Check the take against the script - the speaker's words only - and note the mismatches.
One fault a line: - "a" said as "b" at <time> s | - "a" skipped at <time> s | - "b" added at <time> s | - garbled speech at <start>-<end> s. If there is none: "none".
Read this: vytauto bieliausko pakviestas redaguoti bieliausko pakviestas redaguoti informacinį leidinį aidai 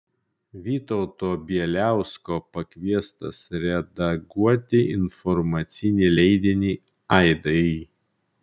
- "bieliausko pakviestas redaguoti" skipped at 4.8 s